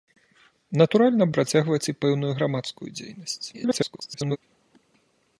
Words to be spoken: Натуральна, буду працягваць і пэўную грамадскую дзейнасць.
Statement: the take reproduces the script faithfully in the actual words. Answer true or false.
false